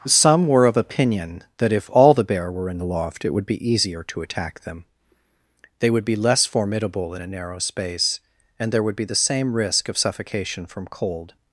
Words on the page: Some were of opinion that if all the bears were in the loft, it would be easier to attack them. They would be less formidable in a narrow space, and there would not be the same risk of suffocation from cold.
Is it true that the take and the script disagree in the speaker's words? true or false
true